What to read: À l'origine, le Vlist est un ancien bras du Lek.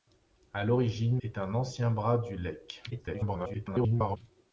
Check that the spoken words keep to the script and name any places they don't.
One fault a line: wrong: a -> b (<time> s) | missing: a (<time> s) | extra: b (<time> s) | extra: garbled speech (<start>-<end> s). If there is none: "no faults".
missing: le Vlist (1.2 s)
extra: garbled speech (2.9-4.2 s)